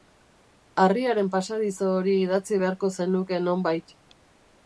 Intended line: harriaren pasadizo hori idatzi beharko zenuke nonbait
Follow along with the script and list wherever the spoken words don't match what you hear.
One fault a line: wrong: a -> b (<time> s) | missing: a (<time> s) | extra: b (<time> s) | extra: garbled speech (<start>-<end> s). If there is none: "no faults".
no faults